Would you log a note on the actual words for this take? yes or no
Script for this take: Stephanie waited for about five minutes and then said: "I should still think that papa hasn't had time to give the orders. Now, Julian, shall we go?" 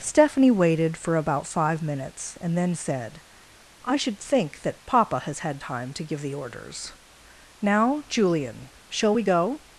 yes